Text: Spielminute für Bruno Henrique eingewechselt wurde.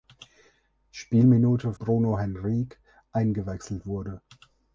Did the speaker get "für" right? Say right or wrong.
wrong